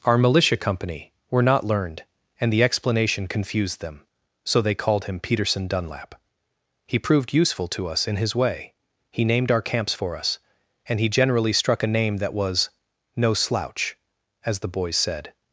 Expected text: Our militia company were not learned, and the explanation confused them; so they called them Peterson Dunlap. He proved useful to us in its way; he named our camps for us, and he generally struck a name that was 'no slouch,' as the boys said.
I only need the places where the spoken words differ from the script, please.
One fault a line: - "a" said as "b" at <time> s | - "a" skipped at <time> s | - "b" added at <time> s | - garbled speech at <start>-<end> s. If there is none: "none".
- "them" said as "him" at 5.0 s
- "its" said as "his" at 8.2 s